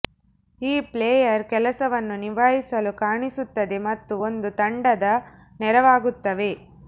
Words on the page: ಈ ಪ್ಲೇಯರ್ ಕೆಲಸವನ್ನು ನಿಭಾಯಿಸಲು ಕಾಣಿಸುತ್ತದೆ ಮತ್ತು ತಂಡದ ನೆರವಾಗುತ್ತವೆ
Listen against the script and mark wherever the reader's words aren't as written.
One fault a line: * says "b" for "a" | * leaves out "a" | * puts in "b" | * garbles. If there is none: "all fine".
* puts in "ಒಂದು"